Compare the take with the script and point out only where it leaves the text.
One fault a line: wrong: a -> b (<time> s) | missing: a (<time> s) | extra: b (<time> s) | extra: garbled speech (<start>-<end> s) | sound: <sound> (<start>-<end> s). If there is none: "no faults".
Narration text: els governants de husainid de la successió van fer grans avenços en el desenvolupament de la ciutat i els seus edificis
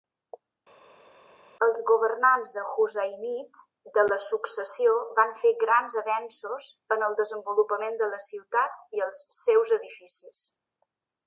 no faults